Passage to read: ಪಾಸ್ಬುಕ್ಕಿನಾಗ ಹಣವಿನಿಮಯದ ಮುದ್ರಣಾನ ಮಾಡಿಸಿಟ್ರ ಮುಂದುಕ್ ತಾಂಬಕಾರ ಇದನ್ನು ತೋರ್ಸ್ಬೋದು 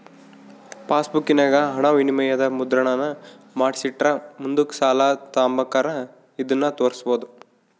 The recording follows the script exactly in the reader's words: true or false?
false